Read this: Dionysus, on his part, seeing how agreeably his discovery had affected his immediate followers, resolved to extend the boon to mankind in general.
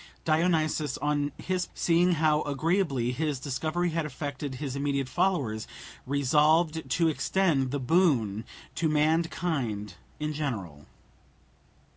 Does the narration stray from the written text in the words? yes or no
yes